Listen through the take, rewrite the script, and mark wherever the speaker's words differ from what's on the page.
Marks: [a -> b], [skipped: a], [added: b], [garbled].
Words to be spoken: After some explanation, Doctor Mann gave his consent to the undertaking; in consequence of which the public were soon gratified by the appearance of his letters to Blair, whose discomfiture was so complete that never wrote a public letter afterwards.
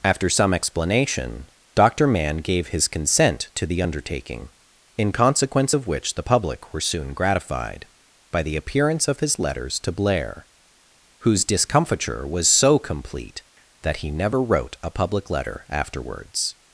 After some explanation, Doctor Mann gave his consent to the undertaking; in consequence of which the public were soon gratified by the appearance of his letters to Blair, whose discomfiture was so complete that [added: he] never wrote a public letter afterwards.